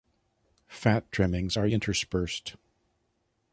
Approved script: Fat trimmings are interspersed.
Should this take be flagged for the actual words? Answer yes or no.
no